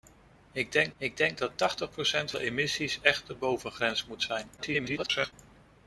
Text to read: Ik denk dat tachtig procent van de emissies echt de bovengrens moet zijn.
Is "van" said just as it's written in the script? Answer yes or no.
no